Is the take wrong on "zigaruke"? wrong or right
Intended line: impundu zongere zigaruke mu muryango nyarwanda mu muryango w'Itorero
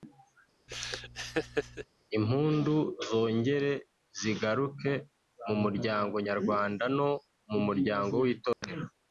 right